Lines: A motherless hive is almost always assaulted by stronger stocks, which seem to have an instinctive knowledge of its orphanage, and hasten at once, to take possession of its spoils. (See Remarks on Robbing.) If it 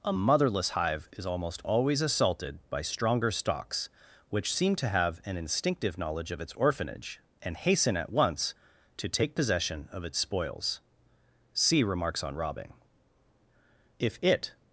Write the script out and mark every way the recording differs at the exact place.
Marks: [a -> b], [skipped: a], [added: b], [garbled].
A motherless hive is almost always assaulted by stronger stocks, which seem to have an instinctive knowledge of its orphanage, and hasten at once, to take possession of its spoils. (See Remarks on Robbing.) If it